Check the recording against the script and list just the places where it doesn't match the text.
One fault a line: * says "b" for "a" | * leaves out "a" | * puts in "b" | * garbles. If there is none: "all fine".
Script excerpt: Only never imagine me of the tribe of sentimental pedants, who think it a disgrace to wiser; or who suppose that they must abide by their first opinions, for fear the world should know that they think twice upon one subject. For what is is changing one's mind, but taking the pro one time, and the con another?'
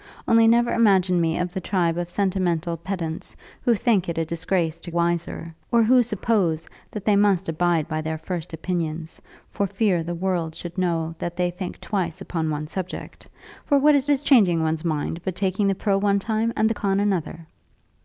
all fine